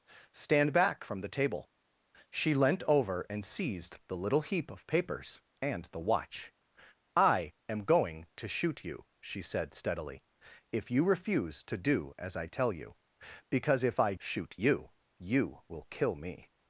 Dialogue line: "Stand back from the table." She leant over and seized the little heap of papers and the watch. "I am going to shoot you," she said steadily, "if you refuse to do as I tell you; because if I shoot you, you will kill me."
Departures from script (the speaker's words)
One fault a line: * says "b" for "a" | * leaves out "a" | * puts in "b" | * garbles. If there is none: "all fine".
all fine